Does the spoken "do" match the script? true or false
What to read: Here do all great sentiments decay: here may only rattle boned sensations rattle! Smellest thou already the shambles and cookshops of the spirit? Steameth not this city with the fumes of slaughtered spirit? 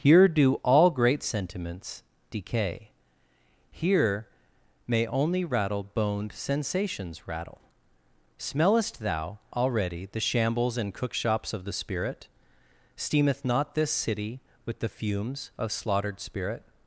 true